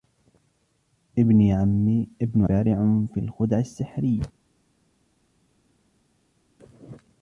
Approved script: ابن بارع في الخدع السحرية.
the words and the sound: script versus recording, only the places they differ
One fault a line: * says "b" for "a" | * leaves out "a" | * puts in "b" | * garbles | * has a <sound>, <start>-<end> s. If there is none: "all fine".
all fine